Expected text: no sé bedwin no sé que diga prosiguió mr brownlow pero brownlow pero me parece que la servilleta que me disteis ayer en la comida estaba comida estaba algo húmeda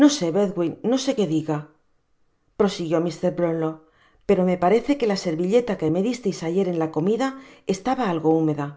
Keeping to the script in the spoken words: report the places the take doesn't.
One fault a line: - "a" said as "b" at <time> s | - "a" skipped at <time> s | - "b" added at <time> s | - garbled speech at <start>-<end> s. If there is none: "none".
- "brownlow pero" skipped at 4.4 s
- "comida estaba" skipped at 8.0 s